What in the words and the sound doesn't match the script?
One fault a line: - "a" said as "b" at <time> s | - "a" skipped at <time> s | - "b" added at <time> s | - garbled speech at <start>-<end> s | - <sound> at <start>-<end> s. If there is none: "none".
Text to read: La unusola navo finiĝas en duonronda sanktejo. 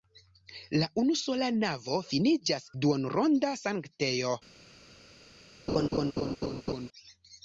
- "en" skipped at 2.6 s
- laugh at 5.7-6.9 s